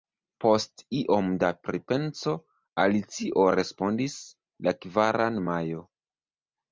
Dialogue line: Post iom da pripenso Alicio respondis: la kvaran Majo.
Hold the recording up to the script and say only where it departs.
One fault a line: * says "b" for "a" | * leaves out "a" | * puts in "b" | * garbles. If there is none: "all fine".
all fine